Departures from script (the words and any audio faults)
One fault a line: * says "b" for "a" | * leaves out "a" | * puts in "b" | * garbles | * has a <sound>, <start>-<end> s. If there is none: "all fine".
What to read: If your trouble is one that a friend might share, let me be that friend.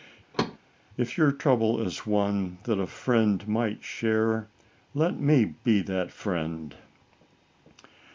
* has a thud, 0.3-0.6 s